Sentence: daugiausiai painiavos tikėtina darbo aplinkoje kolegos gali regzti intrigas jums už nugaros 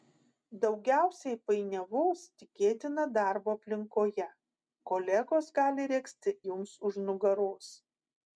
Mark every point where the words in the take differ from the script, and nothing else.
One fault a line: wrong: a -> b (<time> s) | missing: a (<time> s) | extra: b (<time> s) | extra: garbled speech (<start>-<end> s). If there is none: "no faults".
missing: intrigas (6.4 s)